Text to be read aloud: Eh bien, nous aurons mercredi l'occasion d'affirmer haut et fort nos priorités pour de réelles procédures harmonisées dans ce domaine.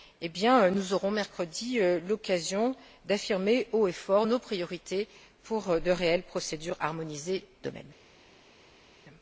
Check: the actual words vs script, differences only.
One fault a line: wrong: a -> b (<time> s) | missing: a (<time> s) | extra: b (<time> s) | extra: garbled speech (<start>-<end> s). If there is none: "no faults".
missing: dans ce (7.4 s)